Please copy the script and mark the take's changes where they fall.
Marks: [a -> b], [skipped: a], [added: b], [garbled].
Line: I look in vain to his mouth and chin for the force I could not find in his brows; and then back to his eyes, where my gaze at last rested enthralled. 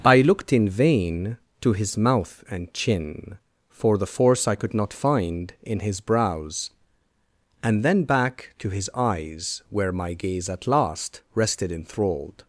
I [look -> looked] in vain to his mouth and chin for the force I could not find in his brows; and then back to his eyes, where my gaze at last rested enthralled.